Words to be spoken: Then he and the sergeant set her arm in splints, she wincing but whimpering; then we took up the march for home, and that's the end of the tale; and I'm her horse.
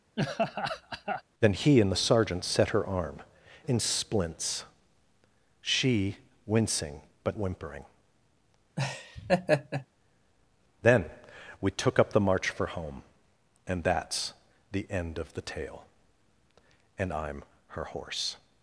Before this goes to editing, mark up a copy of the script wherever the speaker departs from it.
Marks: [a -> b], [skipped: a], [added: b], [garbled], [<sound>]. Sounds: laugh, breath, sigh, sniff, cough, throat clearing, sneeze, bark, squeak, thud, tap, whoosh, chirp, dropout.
[laugh] Then he and the sergeant set her arm in splints, she wincing but whimpering; [laugh] then we took up the march for home, and that's the end of the tale; and I'm her horse.